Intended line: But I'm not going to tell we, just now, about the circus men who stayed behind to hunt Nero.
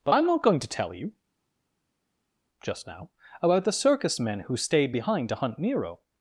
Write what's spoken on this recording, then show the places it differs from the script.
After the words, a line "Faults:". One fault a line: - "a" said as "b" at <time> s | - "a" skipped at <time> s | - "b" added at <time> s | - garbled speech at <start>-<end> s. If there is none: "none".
But I'm not going to tell you, just now, about the circus men who stayed behind to hunt Nero.
Faults:
- "we" said as "you" at 0.9 s